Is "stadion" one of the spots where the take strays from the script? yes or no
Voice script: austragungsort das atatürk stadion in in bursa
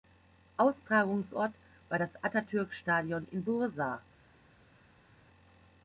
no